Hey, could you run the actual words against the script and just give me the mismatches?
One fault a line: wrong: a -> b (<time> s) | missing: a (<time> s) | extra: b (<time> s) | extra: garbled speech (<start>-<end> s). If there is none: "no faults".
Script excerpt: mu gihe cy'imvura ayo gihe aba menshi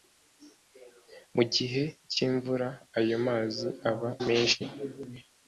wrong: gihe -> mazi (3.3 s)